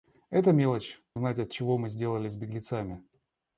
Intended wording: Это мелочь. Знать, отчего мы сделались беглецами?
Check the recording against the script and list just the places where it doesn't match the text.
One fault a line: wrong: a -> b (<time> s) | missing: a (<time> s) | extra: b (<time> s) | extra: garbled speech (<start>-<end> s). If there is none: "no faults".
no faults